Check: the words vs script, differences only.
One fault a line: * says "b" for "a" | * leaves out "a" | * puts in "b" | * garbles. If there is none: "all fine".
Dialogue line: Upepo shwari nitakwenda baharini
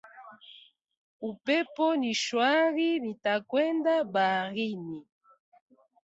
* puts in "ni"